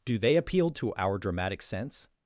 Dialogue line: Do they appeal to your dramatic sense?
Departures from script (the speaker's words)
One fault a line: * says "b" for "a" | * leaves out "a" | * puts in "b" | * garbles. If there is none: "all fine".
* says "our" for "your"